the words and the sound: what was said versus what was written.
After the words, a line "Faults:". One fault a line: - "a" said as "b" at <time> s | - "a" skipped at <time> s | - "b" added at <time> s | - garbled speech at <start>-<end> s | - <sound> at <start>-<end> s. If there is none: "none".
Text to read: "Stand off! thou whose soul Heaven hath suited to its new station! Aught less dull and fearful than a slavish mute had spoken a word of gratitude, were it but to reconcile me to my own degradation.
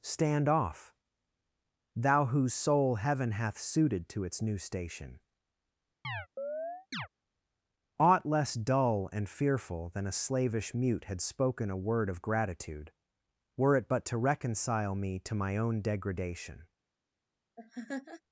"Stand off! thou whose soul Heaven hath suited to its new station! Aught less dull and fearful than a slavish mute had spoken a word of gratitude, were it but to reconcile me to my own degradation.
Faults:
- chirp at 6.0-7.1 s
- laugh at 17.6-18.2 s